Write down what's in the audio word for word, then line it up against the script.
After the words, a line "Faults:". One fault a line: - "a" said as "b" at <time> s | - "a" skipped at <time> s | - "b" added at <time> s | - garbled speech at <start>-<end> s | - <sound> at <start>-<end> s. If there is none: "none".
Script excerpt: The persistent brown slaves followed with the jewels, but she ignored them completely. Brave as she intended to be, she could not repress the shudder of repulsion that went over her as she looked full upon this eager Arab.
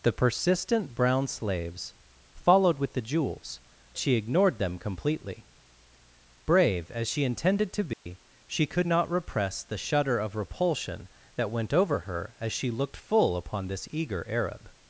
The persistent brown slaves followed with the jewels, she ignored them completely. Brave as she intended to be, she could not repress the shudder of repulsion that went over her as she looked full upon this eager Arab.
Faults:
- "but" skipped at 3.6 s
- dropout at 7.9-8.1 s